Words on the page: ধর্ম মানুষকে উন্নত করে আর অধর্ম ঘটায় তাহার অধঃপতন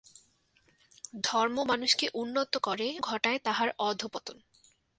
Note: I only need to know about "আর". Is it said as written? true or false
false